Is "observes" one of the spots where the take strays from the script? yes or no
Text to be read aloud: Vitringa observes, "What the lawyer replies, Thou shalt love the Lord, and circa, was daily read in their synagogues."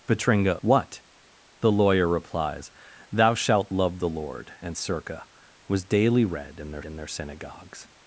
yes